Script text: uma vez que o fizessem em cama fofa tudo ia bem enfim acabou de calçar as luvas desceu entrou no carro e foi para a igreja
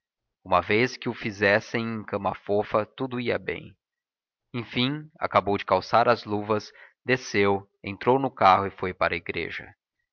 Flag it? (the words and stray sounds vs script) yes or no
no